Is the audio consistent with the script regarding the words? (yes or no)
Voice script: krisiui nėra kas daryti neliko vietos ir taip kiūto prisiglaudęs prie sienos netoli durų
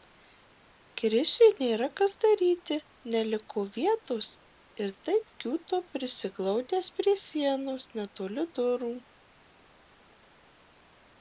yes